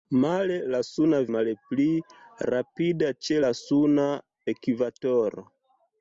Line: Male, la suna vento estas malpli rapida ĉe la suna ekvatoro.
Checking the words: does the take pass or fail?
fail